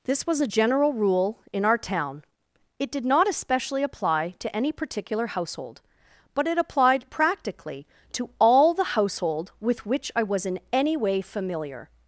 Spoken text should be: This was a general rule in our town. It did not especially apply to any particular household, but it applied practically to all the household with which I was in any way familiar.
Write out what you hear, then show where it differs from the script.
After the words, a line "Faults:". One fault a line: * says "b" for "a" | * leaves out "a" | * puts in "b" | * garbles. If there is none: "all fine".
This was a general rule in our town. It did not especially apply to any particular household, but it applied practically to all the household with which I was in any way familiar.
Faults:
all fine